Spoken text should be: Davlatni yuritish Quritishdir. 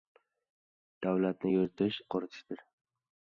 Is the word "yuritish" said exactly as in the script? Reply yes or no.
yes